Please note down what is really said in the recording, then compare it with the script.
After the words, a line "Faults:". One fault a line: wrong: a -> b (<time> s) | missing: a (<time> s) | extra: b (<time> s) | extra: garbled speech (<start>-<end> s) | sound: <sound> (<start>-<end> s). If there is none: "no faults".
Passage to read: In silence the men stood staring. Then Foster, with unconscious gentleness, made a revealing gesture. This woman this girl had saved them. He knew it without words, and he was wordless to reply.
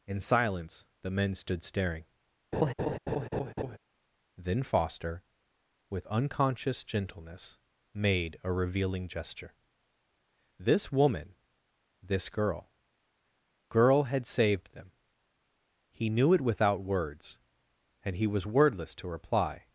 In silence the men stood staring. Then Foster, with unconscious gentleness, made a revealing gesture. This woman this girl girl had saved them. He knew it without words, and he was wordless to reply.
Faults:
sound: laugh (2.5-3.8 s)
extra: girl (13.7 s)